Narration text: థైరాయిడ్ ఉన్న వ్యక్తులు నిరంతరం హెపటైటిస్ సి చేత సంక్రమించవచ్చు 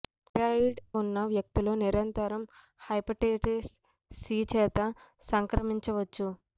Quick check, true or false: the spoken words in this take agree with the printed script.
true